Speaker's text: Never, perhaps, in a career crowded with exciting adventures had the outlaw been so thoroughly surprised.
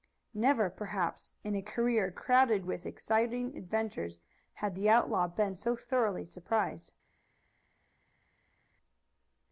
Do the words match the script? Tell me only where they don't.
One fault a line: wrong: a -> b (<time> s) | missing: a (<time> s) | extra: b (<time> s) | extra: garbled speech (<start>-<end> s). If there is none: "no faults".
no faults